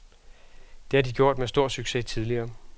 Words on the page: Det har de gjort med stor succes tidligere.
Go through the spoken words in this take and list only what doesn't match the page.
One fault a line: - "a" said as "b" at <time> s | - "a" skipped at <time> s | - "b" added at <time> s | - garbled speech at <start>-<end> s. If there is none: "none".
none